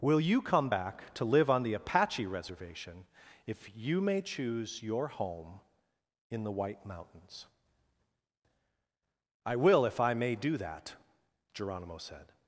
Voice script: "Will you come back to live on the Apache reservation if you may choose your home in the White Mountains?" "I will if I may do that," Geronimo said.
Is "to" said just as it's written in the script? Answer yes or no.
yes